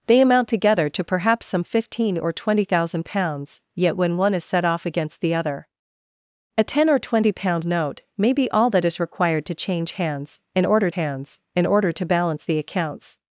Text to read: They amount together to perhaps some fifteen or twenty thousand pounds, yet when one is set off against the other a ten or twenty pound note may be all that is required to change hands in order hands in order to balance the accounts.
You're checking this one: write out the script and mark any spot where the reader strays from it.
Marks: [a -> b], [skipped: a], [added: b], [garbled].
They amount together to perhaps some fifteen or twenty thousand pounds, yet when one is set off against the other a ten or twenty pound note may be all that is required to change hands in order hands in order to balance the accounts.